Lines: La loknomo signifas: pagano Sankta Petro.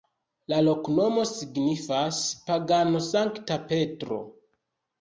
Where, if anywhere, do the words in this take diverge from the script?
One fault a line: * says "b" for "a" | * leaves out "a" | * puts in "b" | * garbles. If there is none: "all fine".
all fine